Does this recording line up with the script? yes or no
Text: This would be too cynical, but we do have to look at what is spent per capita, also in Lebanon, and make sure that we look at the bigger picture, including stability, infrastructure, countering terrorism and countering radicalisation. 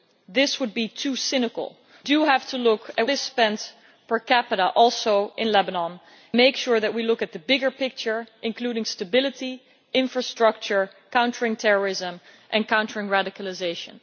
no